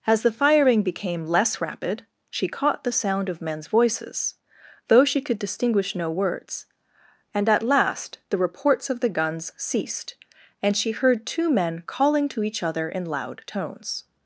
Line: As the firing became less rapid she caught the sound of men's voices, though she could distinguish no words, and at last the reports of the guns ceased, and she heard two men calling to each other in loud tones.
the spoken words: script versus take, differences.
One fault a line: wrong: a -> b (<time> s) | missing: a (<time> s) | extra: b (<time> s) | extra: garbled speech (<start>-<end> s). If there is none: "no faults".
no faults